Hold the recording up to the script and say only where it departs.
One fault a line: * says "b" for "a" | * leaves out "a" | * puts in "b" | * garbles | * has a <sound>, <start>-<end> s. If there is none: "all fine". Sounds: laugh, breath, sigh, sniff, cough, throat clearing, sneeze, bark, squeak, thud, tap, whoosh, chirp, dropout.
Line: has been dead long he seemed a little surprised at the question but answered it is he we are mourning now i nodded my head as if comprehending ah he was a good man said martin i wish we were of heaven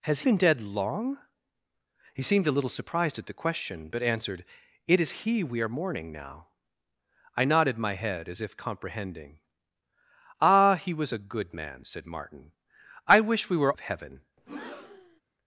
* has a breath, 14.4-15.2 s